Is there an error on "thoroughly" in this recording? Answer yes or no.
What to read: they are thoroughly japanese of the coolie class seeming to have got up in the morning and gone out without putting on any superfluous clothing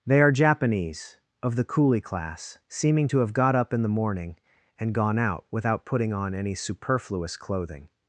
yes